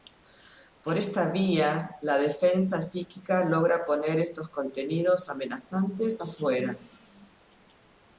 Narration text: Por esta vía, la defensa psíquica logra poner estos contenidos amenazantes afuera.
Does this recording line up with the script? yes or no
yes